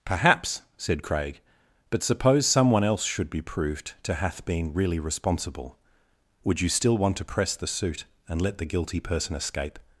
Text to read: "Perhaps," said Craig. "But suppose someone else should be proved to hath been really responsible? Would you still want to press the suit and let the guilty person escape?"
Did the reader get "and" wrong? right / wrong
right